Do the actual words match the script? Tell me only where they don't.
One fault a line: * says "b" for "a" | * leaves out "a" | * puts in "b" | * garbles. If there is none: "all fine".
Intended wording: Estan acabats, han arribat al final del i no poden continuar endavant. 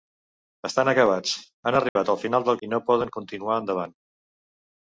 all fine